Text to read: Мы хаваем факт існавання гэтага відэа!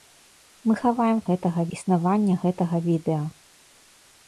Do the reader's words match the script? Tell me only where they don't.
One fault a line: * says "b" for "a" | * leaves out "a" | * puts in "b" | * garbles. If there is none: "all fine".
* says "гэтага" for "факт"